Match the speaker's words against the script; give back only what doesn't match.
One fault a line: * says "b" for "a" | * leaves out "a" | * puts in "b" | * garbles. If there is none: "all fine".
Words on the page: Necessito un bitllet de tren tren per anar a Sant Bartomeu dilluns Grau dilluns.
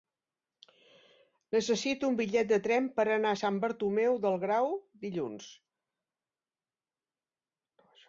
* leaves out "tren"
* says "del" for "dilluns"